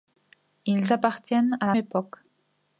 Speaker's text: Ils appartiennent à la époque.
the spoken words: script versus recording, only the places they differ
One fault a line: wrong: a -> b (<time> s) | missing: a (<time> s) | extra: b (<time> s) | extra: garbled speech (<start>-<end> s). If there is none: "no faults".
no faults